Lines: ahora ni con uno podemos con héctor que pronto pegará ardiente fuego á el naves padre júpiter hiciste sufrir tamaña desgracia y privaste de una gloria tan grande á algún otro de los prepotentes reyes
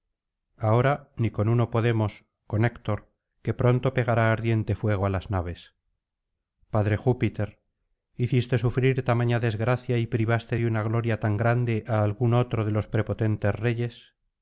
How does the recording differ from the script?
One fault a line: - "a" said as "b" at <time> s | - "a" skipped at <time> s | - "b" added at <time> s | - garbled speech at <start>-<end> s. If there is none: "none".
- "el" said as "las" at 5.1 s